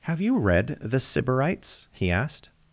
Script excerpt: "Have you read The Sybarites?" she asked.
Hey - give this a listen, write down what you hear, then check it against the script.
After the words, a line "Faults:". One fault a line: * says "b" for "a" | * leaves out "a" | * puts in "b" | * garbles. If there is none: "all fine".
"Have you read The Sybarites?" he asked.
Faults:
* says "he" for "she"